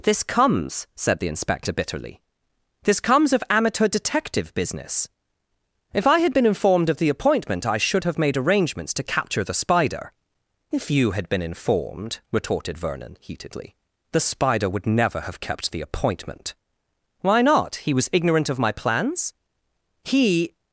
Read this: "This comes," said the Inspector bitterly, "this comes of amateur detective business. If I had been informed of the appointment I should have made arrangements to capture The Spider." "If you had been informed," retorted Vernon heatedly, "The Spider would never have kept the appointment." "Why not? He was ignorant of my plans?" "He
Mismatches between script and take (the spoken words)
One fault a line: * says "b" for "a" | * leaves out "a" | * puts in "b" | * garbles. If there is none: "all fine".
all fine